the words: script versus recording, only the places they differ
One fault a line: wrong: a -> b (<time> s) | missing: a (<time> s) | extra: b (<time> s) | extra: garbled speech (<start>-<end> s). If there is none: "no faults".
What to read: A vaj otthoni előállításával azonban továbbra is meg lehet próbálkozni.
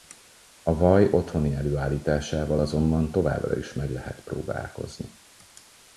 no faults